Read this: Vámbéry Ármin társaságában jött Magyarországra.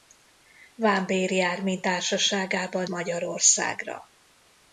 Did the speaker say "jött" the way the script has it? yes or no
no